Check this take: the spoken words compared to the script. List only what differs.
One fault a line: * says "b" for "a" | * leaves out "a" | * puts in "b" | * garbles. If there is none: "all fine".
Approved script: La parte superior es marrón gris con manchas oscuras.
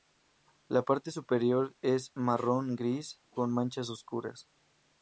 all fine